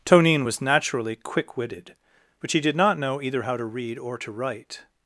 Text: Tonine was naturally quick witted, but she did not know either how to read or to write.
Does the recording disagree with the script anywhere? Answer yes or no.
no